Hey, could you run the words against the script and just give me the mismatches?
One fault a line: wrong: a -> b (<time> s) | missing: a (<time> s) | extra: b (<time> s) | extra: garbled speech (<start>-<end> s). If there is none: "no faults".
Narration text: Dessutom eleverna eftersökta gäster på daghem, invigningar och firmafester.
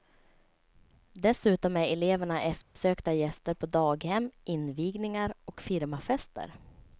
extra: är (1.8 s)